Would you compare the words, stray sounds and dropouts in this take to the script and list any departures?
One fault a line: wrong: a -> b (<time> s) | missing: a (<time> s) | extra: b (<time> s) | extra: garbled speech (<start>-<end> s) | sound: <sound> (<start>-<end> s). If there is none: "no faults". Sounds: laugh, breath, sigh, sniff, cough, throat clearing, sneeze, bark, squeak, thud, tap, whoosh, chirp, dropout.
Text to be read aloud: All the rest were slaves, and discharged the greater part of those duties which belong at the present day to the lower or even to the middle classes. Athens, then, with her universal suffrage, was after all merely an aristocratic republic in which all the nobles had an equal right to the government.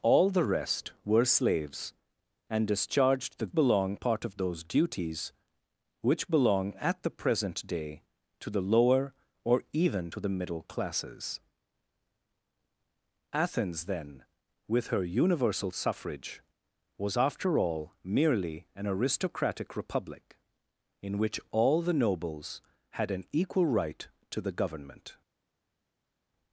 wrong: greater -> belong (3.5 s)